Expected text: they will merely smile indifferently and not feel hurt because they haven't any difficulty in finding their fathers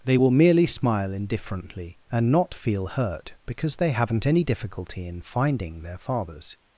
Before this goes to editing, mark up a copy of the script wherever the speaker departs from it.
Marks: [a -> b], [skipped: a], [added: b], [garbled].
they will merely smile indifferently and not feel hurt because they haven't any difficulty in finding their fathers